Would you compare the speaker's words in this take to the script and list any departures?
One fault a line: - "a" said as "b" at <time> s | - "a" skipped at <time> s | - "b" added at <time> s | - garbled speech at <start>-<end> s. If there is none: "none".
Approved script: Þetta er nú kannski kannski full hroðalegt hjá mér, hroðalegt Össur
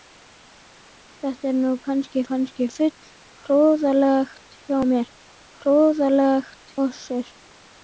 none